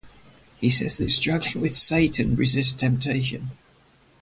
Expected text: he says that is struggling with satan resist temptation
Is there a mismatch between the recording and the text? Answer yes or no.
no